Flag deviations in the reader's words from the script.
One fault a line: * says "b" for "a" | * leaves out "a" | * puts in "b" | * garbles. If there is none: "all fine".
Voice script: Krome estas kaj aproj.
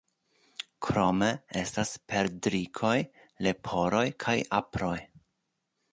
* puts in "perdrikoj leporoj"